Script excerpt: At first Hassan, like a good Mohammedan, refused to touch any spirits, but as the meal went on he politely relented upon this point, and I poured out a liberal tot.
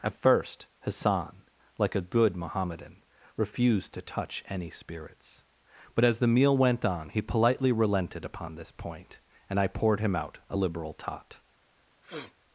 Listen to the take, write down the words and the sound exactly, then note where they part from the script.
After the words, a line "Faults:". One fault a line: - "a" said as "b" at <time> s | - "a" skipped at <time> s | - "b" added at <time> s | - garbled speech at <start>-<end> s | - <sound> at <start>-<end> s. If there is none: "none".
At first Hassan, like a good Mohammedan, refused to touch any spirits, but as the meal went on he politely relented upon this point, and I poured him out a liberal tot.
Faults:
- "him" added at 10.0 s
- sniff at 12.0-12.3 s